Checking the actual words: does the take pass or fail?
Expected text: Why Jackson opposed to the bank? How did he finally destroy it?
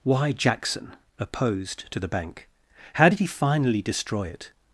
pass